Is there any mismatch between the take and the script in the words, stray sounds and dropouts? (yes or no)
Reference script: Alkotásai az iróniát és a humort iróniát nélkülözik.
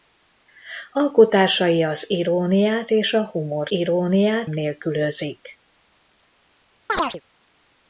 yes